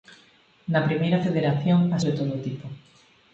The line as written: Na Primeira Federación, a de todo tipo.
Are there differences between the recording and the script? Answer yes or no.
no